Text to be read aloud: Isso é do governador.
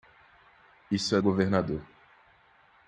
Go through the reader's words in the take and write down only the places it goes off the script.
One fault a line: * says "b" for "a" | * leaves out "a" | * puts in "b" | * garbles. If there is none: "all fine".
* leaves out "do"